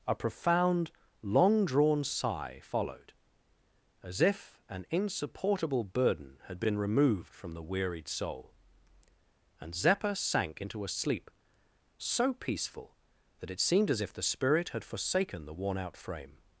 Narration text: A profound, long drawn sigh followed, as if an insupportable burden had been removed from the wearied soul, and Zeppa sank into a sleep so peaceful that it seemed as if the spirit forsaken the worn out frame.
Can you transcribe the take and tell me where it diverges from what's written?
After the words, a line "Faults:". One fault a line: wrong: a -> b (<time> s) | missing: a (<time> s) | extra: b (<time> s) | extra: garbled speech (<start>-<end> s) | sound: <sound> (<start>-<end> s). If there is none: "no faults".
A profound, long drawn sigh followed, as if an insupportable burden had been removed from the wearied soul, and Zeppa sank into a sleep so peaceful that it seemed as if the spirit had forsaken the worn out frame.
Faults:
extra: had (14.7 s)